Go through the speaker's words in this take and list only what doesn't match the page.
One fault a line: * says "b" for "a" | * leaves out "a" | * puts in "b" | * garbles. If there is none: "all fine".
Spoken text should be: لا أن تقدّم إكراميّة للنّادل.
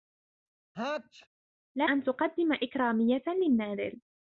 all fine